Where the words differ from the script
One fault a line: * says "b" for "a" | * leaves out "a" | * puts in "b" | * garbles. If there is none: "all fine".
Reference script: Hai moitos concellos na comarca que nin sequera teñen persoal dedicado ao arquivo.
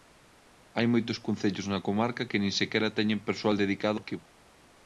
* leaves out "ao"